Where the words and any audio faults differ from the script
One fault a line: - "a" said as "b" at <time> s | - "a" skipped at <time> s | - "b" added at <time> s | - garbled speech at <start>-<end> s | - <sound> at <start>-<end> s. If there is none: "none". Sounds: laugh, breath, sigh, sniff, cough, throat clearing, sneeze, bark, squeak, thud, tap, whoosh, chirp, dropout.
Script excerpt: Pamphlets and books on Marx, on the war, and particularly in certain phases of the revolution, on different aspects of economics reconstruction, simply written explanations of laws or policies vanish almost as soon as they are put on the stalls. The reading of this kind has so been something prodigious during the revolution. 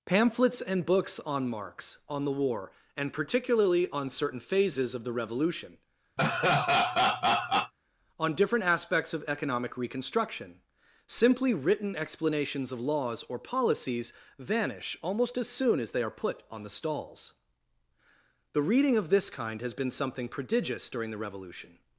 - "in" said as "on" at 3.9 s
- laugh at 6.2-7.7 s
- "economics" said as "economic" at 9.3 s
- "so" skipped at 19.7 s